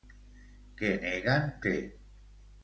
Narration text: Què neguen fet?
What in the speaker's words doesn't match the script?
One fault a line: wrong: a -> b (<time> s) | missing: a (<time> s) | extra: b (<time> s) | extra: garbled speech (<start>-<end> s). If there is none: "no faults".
no faults